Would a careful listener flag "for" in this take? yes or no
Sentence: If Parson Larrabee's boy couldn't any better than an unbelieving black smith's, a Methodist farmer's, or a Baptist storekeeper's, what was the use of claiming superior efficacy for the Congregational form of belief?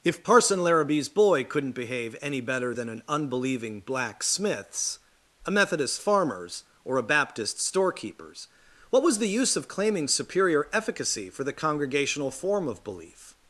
no